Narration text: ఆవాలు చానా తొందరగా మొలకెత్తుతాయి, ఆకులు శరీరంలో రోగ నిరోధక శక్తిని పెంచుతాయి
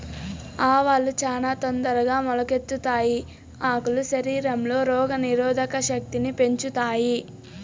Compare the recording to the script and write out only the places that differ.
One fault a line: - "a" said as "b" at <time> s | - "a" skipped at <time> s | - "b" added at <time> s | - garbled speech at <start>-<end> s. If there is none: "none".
none